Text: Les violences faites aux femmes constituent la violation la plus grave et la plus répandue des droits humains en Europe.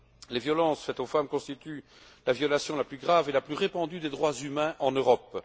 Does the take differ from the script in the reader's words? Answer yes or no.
no